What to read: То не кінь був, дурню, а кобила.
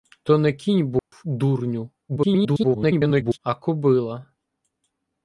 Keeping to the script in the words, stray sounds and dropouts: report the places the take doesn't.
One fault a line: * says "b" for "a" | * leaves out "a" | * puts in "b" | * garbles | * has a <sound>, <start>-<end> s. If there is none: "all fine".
* has a dropout, 1.0-1.1 s
* garbles